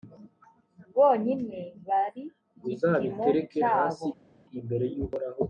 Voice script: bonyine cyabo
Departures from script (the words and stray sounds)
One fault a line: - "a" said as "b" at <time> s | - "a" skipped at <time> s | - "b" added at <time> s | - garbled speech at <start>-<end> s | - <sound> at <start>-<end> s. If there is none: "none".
- "bari gipimo" added at 1.9 s